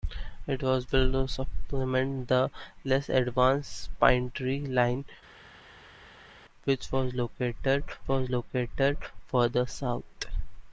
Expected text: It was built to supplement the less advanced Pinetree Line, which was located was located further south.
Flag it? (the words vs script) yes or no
no